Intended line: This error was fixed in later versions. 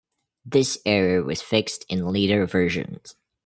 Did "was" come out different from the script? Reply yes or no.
no